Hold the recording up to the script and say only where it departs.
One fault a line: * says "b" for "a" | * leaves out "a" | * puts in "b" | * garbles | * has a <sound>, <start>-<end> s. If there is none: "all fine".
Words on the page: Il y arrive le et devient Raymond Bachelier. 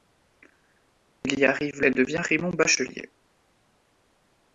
* leaves out "le"